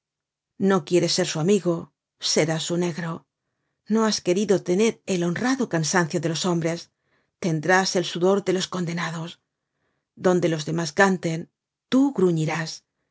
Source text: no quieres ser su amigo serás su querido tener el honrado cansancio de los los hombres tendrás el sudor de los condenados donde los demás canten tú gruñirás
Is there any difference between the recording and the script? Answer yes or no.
yes